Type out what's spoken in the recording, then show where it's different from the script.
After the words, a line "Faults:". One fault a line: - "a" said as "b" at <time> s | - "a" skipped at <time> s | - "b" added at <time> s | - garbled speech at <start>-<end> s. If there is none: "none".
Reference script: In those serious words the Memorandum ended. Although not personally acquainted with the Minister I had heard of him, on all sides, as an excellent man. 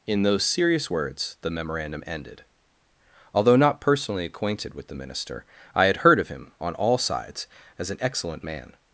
In those serious words the Memorandum ended. Although not personally acquainted with the Minister I had heard of him, on all sides, as an excellent man.
Faults:
none